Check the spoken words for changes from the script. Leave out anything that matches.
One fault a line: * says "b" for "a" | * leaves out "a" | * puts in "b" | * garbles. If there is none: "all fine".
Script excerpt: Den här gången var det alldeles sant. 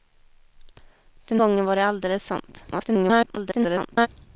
* leaves out "här"
* garbles